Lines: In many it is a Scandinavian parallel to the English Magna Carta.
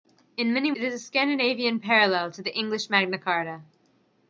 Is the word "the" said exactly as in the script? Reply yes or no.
yes